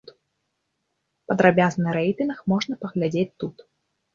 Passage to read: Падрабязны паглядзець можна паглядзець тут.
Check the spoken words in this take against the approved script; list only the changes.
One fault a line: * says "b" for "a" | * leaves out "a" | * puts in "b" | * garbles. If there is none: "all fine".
* says "рэйтынг" for "паглядзець"